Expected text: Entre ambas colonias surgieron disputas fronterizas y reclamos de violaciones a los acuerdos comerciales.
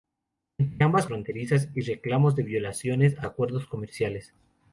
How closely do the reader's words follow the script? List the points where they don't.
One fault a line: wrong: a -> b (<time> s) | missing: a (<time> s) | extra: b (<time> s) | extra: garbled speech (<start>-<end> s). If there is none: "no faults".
missing: colonias surgieron disputas (1.1 s)
missing: los (3.3 s)